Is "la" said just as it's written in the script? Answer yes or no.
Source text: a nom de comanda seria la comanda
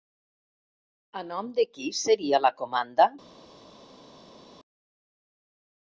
yes